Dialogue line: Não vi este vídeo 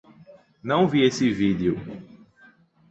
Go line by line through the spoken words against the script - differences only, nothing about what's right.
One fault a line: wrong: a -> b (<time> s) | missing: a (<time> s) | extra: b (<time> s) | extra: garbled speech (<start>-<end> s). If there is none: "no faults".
wrong: este -> esse (1.0 s)